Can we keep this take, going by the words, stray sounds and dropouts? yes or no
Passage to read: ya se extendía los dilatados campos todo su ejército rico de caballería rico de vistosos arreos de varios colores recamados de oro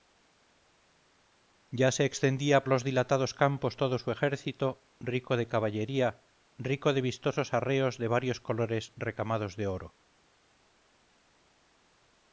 yes